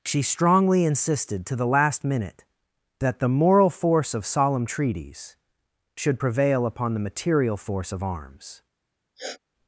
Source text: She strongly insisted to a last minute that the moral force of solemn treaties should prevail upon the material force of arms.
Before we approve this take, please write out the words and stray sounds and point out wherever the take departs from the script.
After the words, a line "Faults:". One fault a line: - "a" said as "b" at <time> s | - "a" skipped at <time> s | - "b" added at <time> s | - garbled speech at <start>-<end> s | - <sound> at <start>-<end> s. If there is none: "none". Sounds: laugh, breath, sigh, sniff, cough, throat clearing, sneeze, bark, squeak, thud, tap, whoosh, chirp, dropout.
She strongly insisted to the last minute that the moral force of solemn treaties should prevail upon the material force of arms.
Faults:
- "a" said as "the" at 1.6 s
- sniff at 9.2-9.4 s